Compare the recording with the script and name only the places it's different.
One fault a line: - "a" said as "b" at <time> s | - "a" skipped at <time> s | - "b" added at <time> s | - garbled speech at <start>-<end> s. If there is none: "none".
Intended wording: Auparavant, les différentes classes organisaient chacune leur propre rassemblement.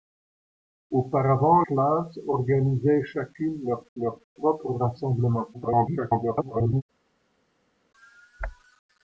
- "les différentes" skipped at 1.6 s
- "leur" added at 4.0 s
- garbled speech at 5.5-6.8 s